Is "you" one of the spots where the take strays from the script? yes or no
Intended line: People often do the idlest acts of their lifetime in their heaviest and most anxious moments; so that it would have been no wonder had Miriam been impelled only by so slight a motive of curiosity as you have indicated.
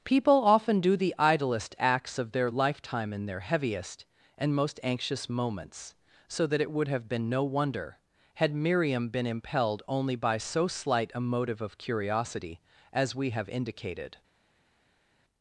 yes